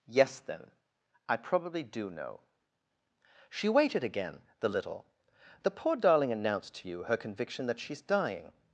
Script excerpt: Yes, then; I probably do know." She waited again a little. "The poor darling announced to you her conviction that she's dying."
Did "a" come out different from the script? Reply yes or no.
yes